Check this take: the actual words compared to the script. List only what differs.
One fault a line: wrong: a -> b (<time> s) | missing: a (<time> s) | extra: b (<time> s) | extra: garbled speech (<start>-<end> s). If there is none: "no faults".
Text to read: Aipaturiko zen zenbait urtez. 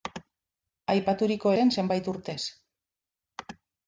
no faults